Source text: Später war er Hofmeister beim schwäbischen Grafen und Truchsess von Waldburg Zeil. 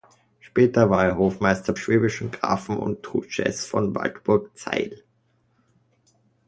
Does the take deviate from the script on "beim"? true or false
true